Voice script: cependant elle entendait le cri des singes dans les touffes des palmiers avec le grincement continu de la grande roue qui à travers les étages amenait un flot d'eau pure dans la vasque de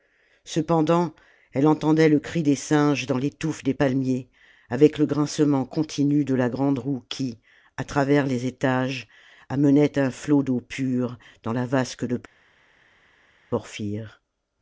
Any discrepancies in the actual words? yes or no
no